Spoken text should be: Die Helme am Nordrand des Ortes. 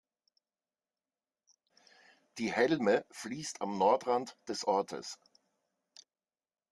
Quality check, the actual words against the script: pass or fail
fail